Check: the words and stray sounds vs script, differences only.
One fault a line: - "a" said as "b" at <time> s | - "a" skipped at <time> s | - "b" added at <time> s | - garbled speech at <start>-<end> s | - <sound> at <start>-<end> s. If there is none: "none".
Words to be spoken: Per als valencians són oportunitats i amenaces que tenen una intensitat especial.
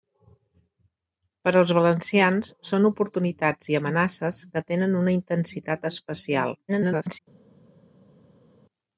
- garbled speech at 6.7-7.2 s